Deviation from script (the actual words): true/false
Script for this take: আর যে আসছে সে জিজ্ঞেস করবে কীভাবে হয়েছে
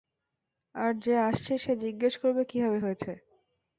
false